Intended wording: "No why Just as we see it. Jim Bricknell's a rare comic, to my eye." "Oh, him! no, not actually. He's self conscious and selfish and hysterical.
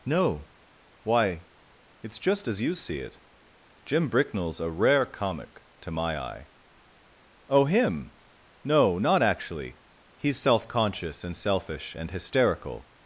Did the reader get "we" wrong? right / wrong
wrong